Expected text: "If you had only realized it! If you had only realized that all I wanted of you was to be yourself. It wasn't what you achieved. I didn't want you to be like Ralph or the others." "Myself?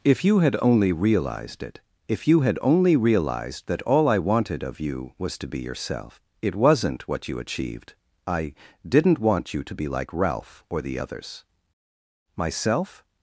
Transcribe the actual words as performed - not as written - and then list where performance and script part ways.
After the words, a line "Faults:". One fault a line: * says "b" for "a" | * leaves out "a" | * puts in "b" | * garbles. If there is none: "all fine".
"If you had only realized it! If you had only realized that all I wanted of you was to be yourself. It wasn't what you achieved. I didn't want you to be like Ralph or the others." "Myself?
Faults:
all fine